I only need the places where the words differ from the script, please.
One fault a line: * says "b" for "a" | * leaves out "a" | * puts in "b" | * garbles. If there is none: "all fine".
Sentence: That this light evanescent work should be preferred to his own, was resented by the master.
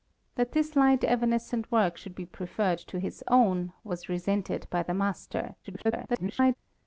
* garbles